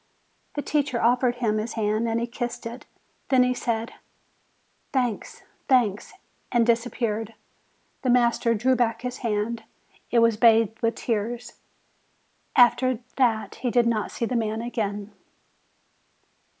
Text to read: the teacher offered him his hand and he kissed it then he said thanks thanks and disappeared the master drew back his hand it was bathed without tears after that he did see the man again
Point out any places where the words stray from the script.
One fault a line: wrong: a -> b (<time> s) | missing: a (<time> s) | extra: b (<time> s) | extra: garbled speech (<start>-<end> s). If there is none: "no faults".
wrong: without -> with (10.8 s)
extra: not (13.9 s)